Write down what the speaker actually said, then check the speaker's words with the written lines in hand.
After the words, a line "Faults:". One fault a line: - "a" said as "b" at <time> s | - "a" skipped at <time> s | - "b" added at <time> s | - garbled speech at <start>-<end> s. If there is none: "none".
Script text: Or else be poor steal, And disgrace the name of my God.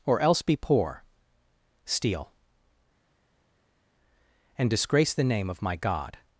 Or else be poor steal, And disgrace the name of my God.
Faults:
none